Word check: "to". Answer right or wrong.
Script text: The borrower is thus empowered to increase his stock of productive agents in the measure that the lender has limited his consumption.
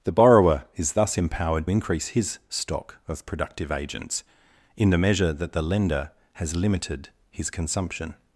wrong